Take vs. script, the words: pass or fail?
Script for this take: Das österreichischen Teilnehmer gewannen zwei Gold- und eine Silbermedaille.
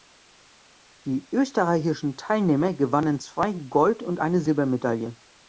fail